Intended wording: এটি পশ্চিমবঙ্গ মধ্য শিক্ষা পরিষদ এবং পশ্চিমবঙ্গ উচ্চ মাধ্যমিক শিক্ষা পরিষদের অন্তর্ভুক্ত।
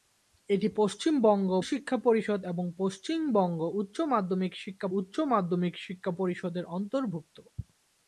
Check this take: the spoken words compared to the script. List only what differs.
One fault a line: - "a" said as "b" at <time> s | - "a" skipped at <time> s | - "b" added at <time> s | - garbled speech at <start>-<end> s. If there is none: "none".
- "মধ্য" skipped at 1.5 s
- "উচ্চ মাধ্যমিক শিক্ষা" added at 5.0 s